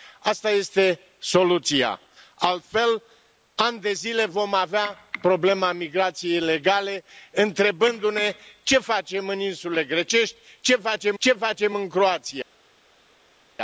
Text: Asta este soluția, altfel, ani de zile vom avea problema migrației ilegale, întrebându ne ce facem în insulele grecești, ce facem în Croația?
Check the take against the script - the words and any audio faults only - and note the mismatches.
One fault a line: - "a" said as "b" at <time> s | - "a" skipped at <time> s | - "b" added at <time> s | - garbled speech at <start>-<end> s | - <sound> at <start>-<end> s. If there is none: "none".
- "ce facem" added at 11.2 s